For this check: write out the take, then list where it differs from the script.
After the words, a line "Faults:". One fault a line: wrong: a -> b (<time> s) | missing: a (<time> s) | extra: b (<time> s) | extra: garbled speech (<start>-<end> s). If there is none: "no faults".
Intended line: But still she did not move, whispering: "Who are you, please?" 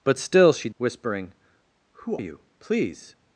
But still she whispering: "Who you, please?"
Faults:
missing: did not move (0.7 s)
missing: are (2.2 s)